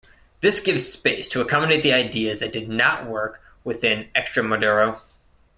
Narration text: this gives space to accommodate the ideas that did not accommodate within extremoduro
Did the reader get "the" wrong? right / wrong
right